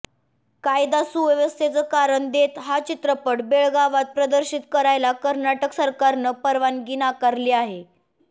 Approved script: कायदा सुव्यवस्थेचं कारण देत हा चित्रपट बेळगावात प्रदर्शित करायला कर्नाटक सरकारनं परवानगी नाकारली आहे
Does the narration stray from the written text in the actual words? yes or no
no